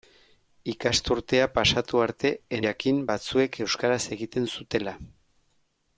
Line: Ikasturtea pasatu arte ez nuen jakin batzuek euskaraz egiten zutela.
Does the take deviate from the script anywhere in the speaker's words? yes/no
yes